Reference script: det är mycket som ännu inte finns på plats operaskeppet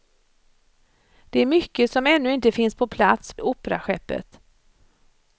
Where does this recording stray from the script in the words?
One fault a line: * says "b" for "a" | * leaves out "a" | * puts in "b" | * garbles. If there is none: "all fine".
all fine